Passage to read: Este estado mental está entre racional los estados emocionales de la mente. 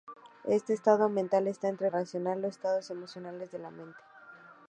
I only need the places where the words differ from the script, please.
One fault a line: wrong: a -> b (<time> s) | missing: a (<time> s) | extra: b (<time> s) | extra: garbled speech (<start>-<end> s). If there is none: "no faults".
no faults